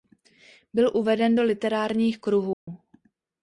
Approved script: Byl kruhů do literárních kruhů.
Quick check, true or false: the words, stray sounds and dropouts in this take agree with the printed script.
false